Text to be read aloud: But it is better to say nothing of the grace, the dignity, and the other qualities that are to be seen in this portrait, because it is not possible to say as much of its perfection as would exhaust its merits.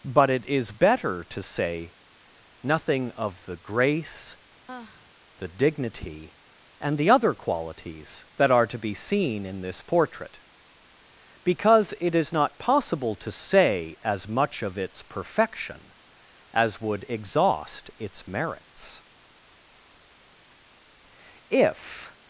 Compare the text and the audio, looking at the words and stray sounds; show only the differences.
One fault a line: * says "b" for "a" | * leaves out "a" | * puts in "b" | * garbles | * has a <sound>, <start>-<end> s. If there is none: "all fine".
* has a sigh, 4.7-5.2 s
* puts in "If"